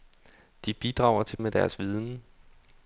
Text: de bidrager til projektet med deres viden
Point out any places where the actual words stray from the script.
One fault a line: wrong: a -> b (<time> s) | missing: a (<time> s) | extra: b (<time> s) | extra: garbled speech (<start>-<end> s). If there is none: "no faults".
missing: projektet (1.4 s)